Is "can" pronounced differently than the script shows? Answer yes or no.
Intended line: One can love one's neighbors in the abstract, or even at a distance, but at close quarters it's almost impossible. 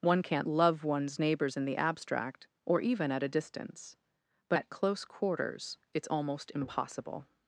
yes